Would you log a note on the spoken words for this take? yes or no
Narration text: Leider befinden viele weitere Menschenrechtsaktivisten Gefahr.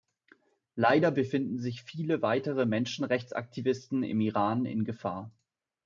yes